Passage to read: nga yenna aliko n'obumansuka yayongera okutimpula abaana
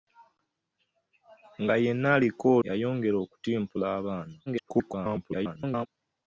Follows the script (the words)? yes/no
no